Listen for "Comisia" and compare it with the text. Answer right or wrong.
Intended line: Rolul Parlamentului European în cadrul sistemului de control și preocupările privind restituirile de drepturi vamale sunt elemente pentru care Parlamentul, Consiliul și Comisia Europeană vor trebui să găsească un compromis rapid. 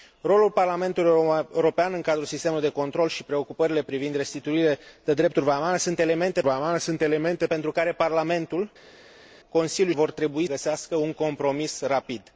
wrong